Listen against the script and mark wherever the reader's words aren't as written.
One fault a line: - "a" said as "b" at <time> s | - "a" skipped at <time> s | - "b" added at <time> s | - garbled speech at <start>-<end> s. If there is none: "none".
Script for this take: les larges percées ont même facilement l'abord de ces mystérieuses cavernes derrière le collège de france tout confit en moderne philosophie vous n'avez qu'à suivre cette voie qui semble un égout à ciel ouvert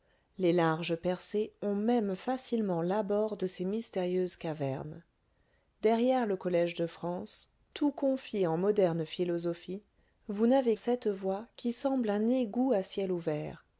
- "qu'à suivre" skipped at 10.8 s